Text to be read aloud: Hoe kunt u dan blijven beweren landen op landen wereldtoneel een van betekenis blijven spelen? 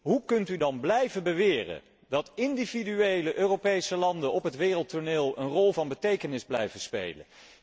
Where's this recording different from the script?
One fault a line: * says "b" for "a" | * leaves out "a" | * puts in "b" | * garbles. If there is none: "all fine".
* puts in "dat individuele Europese"
* says "het" for "landen"
* puts in "rol"